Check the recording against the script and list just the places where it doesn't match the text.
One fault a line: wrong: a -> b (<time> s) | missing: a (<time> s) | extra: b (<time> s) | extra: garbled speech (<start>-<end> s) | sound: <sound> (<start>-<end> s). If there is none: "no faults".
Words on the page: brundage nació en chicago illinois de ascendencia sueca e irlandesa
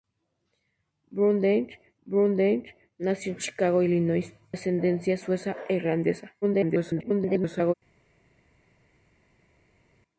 extra: brundage (2.1 s)
missing: de (4.3 s)
extra: garbled speech (6.4-7.7 s)